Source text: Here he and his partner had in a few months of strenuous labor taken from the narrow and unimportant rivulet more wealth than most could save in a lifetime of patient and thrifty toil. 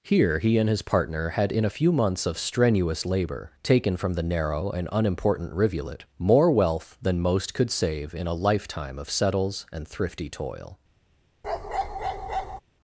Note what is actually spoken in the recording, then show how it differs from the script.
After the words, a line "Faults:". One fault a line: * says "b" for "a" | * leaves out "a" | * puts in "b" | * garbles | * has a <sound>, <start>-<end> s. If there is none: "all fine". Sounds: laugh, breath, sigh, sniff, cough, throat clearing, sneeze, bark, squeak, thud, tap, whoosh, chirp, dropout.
Here he and his partner had in a few months of strenuous labor taken from the narrow and unimportant rivulet more wealth than most could save in a lifetime of settles and thrifty toil.
Faults:
* says "settles" for "patient"
* has a bark, 11.4-12.6 s